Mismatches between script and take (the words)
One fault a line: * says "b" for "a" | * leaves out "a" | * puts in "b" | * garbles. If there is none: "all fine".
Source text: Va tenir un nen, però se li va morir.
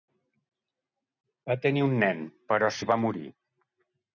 * leaves out "se"